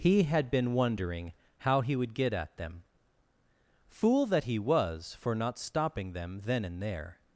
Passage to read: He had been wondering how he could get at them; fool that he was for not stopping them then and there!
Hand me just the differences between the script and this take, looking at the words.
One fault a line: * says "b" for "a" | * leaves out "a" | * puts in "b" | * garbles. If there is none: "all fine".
* says "would" for "could"